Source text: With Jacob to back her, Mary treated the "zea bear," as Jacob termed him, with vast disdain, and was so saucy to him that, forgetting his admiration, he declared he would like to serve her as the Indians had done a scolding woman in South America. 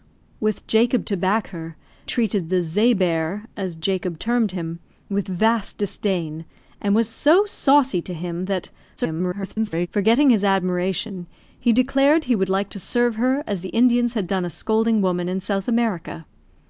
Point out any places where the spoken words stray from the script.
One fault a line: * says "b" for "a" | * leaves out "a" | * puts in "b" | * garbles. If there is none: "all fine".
* leaves out "Mary"
* garbles